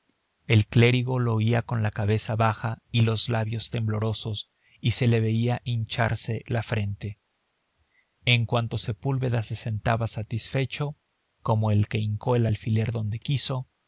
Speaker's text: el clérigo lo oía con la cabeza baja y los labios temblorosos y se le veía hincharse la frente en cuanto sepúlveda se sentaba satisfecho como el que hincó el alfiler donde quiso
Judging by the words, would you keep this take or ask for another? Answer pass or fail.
pass